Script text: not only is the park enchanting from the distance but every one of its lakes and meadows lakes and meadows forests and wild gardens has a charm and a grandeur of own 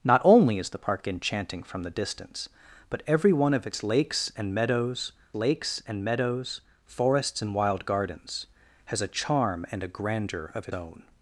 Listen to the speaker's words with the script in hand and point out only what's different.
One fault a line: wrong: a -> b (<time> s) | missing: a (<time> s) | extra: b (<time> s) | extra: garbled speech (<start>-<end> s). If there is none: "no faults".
no faults